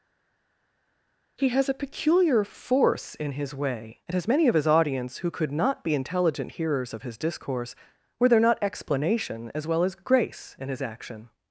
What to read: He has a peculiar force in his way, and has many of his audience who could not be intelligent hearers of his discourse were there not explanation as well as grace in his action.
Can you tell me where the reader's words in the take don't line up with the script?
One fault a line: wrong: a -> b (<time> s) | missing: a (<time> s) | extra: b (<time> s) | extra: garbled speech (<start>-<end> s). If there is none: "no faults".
no faults